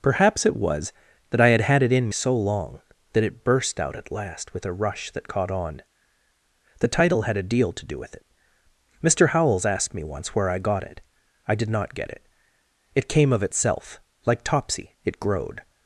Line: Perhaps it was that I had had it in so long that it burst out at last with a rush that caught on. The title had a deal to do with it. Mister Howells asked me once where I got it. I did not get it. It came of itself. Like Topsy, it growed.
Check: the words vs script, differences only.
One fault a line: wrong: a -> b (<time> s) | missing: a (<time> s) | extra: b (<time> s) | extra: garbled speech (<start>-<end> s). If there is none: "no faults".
no faults